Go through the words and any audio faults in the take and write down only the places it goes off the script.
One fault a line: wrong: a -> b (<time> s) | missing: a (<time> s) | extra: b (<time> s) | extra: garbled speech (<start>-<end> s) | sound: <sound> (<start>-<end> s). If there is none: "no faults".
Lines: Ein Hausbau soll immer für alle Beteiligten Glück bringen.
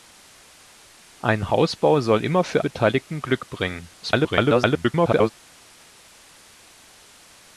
missing: alle (2.6 s)
extra: garbled speech (4.0-5.3 s)